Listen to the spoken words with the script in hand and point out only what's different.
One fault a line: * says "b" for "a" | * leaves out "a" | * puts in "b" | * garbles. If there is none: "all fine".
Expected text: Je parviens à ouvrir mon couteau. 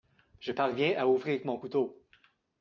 all fine